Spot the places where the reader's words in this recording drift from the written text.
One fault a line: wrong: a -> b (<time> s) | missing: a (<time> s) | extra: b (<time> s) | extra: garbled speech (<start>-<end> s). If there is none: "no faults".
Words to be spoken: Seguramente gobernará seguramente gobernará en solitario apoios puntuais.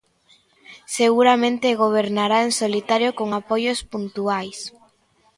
missing: seguramente gobernará (2.4 s)
extra: con (3.2 s)